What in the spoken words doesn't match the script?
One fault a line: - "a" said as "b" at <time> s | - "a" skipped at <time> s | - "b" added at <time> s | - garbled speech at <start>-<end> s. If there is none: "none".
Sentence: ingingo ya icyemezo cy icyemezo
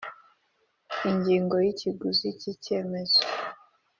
- "icyemezo" said as "ikiguzi" at 1.7 s